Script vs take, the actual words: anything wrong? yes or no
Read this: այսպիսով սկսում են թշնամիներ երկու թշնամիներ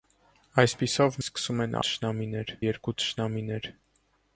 no